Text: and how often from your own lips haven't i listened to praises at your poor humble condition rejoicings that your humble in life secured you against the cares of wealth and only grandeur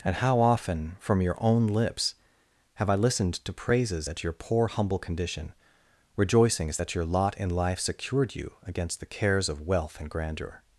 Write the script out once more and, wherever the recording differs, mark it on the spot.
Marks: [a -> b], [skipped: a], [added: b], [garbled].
and how often from your own lips [haven't -> have] i listened to praises at your poor humble condition rejoicings that your [humble -> lot] in life secured you against the cares of wealth and [skipped: only] grandeur